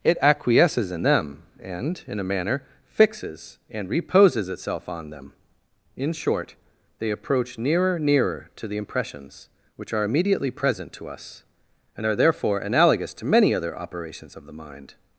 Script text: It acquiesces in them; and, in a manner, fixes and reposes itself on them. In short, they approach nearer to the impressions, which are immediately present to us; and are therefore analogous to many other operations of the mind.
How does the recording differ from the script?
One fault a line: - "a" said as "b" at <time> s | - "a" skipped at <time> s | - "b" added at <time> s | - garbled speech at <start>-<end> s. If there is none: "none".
- "nearer" added at 8.0 s